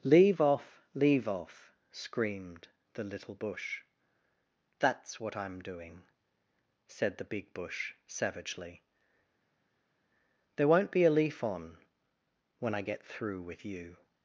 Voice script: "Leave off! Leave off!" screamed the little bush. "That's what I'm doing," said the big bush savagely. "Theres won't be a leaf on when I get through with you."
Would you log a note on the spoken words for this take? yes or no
yes